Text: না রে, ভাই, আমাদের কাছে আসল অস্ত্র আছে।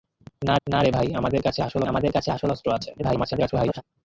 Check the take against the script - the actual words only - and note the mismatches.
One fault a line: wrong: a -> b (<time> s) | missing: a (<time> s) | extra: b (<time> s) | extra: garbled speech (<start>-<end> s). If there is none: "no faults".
extra: না (0.7 s)
extra: আমাদের কাছে আসল (1.9 s)
extra: garbled speech (3.0-3.8 s)